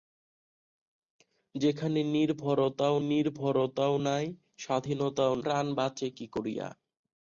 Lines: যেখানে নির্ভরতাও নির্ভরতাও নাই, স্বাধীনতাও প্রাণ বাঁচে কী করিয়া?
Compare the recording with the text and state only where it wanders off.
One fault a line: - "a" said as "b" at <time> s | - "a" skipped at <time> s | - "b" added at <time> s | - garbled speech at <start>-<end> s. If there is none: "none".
none